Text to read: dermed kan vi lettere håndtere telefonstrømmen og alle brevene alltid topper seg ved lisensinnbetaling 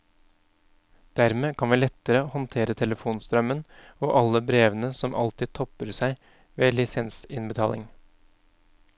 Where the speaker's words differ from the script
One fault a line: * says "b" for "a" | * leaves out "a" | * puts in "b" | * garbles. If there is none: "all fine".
* puts in "som"